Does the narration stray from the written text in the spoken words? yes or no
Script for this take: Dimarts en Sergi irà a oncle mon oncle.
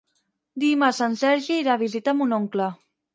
yes